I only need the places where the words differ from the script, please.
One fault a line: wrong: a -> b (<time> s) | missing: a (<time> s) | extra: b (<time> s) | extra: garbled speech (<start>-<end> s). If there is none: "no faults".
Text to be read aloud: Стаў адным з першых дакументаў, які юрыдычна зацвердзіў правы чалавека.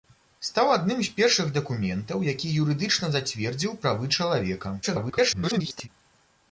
extra: garbled speech (4.8-5.9 s)